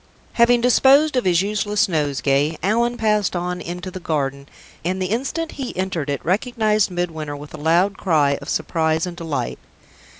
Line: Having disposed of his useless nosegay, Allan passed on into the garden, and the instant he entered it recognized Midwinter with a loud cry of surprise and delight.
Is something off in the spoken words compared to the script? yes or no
no